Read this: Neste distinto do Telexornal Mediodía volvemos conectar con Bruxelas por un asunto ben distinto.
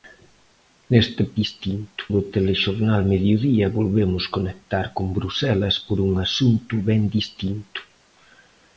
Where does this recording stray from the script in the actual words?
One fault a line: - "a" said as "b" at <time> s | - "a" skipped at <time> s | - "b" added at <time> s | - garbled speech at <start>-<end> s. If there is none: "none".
none